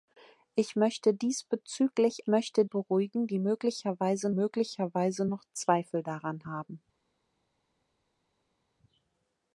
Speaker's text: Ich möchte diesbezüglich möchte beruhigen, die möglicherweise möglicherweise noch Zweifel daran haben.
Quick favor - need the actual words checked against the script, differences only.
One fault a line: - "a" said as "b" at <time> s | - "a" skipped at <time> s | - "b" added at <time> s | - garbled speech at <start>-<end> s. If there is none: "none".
none